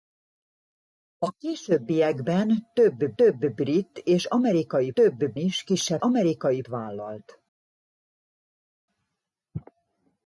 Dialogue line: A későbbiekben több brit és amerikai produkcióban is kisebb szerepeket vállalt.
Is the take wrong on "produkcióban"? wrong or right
wrong